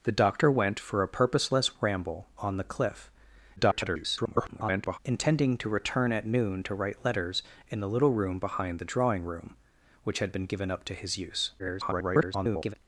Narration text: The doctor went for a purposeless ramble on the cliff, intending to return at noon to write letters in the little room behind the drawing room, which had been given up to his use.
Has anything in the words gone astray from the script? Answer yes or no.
yes